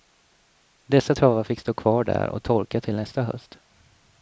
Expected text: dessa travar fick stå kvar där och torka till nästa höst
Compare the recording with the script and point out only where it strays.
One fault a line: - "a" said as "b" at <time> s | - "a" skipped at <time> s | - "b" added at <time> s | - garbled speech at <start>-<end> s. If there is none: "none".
none